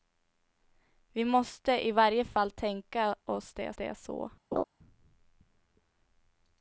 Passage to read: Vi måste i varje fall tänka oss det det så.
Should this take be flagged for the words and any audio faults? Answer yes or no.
yes